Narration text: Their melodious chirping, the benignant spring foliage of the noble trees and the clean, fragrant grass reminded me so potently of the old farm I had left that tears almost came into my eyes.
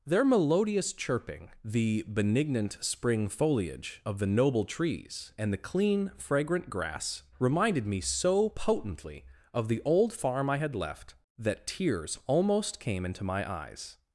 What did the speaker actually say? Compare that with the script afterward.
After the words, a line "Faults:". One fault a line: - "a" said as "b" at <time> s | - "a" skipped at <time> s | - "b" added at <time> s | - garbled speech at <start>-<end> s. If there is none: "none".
Their melodious chirping, the benignant spring foliage of the noble trees and the clean, fragrant grass reminded me so potently of the old farm I had left that tears almost came into my eyes.
Faults:
none